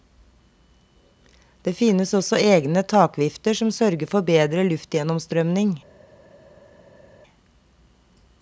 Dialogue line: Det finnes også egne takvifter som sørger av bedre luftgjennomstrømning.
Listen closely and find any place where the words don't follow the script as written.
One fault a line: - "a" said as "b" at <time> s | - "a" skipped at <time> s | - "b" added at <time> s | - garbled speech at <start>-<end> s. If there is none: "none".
- "av" said as "for" at 4.1 s